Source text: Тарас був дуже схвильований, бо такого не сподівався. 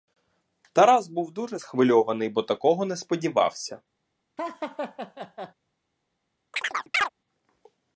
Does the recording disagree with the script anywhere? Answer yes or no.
no